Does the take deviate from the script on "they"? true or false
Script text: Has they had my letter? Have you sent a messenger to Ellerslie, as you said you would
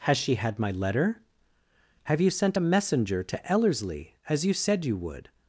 true